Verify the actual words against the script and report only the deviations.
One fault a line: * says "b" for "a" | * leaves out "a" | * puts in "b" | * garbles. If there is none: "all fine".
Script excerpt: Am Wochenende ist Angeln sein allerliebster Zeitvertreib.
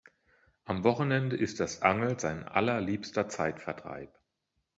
* puts in "das"